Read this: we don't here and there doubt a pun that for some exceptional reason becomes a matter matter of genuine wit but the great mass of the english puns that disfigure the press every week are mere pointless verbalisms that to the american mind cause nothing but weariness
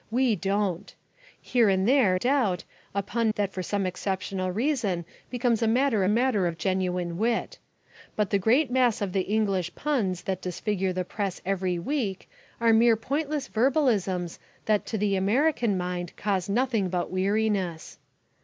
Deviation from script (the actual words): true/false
false